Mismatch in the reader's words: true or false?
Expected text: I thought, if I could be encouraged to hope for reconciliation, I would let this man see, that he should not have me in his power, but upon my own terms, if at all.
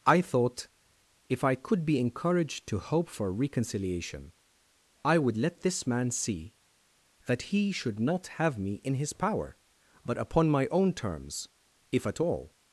false